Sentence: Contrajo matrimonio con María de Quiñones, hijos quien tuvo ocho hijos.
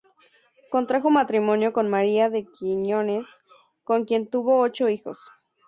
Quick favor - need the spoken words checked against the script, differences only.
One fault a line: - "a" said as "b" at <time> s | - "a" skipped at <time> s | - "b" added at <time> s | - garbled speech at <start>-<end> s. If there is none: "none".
- "hijos" said as "con" at 3.8 s